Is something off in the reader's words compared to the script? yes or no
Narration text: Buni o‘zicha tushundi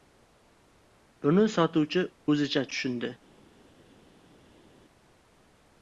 yes